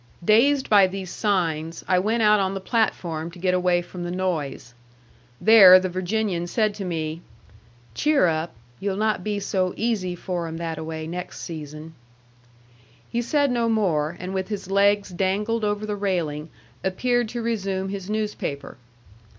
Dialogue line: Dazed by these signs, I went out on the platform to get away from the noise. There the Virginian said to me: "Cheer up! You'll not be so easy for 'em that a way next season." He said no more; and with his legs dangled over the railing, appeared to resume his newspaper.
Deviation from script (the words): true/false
false